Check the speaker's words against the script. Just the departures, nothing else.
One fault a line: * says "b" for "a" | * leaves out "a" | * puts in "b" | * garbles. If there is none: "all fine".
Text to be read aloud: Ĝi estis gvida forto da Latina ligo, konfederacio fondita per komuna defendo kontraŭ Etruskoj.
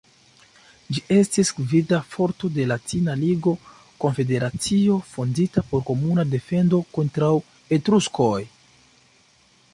* says "de" for "da"
* says "por" for "per"